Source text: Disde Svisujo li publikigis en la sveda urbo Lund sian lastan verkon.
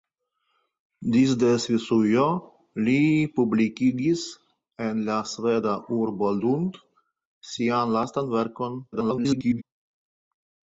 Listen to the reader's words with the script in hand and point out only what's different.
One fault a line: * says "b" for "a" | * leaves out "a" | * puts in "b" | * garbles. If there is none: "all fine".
* garbles